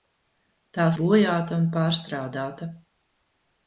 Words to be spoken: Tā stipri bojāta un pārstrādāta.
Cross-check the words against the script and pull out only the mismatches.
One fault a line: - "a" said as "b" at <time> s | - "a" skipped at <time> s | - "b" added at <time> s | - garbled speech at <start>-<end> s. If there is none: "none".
- "stipri" skipped at 0.9 s